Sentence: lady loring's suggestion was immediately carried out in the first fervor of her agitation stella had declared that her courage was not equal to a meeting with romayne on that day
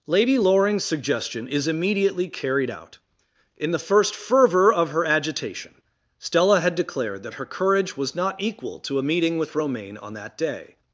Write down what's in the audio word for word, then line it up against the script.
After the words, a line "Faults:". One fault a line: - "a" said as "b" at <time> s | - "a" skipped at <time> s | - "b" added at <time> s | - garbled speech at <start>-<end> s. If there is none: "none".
lady loring's suggestion is immediately carried out in the first fervor of her agitation stella had declared that her courage was not equal to a meeting with romayne on that day
Faults:
- "was" said as "is" at 1.5 s